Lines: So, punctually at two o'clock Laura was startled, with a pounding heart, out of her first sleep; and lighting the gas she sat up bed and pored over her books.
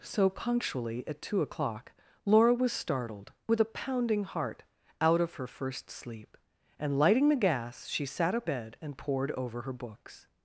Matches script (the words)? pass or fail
pass